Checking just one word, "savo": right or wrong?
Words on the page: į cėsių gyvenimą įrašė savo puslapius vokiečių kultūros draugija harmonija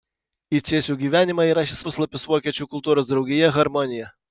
wrong